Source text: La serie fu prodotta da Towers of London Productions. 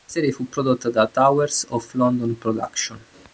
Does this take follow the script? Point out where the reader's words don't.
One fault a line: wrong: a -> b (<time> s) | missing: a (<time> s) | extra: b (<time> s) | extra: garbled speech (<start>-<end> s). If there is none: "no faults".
no faults